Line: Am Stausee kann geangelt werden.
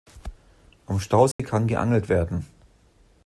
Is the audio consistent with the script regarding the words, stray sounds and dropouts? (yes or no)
no